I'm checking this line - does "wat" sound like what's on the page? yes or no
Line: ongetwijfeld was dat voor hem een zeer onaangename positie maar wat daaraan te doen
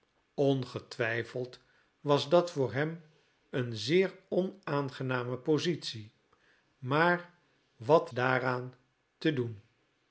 yes